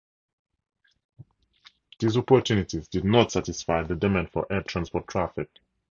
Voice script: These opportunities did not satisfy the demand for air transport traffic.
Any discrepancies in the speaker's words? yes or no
no